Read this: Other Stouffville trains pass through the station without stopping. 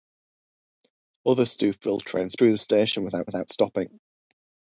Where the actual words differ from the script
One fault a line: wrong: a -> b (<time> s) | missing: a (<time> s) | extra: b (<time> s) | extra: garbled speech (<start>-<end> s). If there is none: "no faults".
missing: pass (2.4 s)
extra: without (3.3 s)